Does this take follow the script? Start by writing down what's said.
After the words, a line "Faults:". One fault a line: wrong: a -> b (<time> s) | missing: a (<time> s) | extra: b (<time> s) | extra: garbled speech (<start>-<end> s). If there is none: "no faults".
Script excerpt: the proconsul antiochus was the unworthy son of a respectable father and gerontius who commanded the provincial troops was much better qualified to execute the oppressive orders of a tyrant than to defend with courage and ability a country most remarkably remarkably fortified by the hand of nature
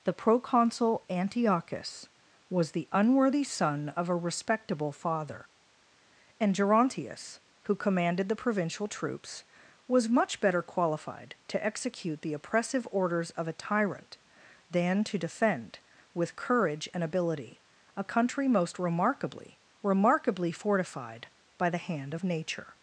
the proconsul antiochus was the unworthy son of a respectable father and gerontius who commanded the provincial troops was much better qualified to execute the oppressive orders of a tyrant than to defend with courage and ability a country most remarkably remarkably fortified by the hand of nature
Faults:
no faults